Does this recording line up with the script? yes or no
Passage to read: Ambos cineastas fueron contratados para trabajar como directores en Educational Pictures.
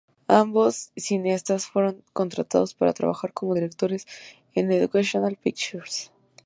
yes